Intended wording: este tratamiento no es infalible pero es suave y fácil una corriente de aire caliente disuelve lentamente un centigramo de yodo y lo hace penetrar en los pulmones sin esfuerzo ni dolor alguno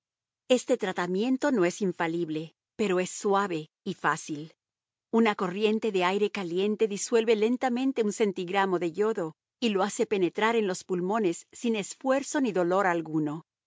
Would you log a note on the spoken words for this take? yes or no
no